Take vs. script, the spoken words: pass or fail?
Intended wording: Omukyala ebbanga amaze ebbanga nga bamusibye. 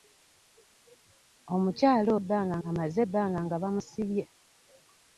pass